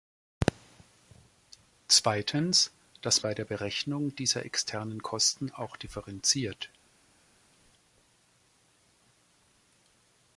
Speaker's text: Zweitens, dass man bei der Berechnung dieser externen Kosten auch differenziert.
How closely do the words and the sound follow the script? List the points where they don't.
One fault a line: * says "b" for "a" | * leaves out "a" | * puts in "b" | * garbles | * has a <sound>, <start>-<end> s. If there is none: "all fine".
* leaves out "man"